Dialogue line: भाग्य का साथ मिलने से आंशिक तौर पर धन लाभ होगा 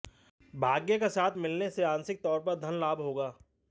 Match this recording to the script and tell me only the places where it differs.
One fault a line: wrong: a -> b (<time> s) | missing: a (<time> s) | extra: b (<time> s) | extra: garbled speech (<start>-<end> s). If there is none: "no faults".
no faults